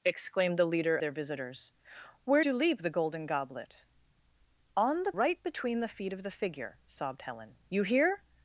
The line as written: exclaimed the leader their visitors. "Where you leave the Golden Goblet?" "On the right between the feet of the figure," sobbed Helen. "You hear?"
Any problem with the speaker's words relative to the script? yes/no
no